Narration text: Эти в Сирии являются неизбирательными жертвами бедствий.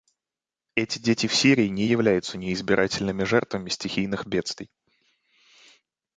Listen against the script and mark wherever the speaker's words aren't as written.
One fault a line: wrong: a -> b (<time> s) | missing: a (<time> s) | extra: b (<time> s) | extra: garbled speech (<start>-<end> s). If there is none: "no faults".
extra: дети (1.0 s)
extra: не (1.7 s)
extra: стихийных (3.7 s)